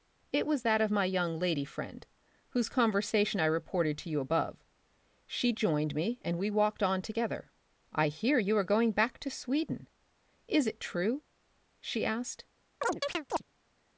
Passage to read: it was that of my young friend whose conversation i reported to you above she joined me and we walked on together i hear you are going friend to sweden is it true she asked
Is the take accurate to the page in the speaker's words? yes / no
no